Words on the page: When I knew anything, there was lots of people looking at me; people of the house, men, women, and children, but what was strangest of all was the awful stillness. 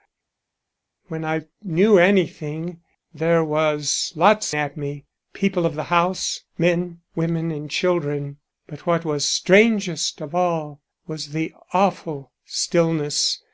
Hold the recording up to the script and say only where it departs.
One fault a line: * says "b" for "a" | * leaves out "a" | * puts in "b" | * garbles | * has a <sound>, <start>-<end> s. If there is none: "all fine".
* leaves out "of people looking"